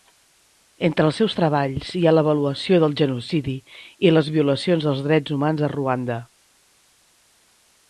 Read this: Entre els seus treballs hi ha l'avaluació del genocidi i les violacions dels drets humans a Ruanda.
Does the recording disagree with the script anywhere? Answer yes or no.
no